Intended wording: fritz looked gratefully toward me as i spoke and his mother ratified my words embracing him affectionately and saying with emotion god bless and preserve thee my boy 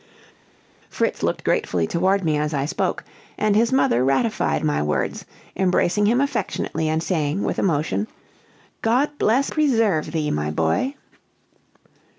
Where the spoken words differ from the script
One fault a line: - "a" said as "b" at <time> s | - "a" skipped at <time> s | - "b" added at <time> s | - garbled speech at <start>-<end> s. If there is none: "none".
- "and" skipped at 9.5 s